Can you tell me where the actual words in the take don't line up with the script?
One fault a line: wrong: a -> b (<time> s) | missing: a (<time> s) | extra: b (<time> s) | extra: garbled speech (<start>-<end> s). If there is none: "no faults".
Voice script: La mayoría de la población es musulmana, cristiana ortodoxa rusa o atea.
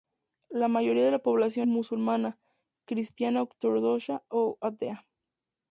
missing: es (1.7 s)
missing: rusa (4.2 s)